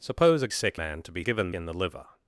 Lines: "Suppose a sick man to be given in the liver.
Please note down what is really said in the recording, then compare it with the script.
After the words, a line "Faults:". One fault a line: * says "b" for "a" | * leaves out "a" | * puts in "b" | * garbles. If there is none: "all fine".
"Suppose a sick man to be given in the liver.
Faults:
all fine